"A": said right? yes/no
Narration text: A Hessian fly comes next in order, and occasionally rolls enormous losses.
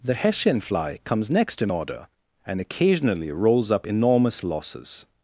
no